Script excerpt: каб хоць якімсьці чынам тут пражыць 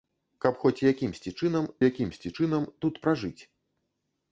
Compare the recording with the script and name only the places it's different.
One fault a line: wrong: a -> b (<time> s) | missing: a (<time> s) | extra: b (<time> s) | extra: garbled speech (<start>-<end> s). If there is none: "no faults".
extra: якімсьці чынам (1.9 s)